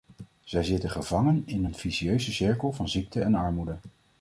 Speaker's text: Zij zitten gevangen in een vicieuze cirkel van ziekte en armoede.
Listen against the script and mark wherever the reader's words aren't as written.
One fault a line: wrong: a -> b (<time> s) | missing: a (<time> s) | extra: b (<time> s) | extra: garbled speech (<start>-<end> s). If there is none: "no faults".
no faults